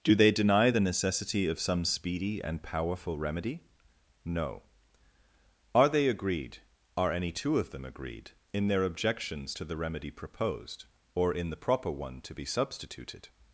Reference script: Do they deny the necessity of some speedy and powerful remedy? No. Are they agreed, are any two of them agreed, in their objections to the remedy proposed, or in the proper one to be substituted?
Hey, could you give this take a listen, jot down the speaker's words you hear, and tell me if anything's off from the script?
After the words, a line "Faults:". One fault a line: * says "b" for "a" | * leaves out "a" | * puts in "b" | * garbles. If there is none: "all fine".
Do they deny the necessity of some speedy and powerful remedy? No. Are they agreed, are any two of them agreed, in their objections to the remedy proposed, or in the proper one to be substituted?
Faults:
all fine